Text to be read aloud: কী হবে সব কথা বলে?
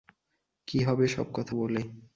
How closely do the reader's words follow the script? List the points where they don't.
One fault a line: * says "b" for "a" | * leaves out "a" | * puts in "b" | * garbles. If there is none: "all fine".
all fine